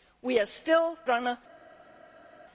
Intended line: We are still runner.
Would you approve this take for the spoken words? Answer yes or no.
yes